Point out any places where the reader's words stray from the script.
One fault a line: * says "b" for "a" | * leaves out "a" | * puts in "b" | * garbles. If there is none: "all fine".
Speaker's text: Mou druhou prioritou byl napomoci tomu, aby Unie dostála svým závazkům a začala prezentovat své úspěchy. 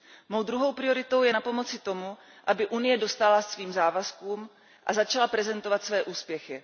* says "je" for "byl"